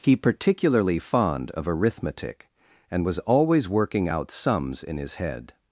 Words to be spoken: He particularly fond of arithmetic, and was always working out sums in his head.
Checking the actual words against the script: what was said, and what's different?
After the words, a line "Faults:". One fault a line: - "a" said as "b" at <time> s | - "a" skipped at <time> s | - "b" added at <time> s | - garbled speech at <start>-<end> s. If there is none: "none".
He particularly fond of arithmetic, and was always working out sums in his head.
Faults:
none